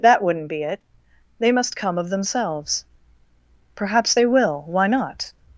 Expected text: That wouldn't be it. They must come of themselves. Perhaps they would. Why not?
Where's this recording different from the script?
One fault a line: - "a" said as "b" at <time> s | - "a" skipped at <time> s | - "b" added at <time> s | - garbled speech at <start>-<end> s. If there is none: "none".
- "would" said as "will" at 4.2 s